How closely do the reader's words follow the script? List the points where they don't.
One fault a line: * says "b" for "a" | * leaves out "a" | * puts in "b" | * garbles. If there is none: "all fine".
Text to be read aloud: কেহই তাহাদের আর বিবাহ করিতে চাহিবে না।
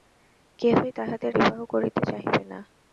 * leaves out "আর"